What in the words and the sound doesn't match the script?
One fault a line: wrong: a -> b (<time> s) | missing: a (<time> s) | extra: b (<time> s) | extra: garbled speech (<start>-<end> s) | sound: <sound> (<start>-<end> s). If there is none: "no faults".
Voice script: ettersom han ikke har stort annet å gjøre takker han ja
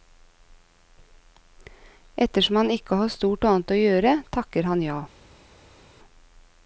no faults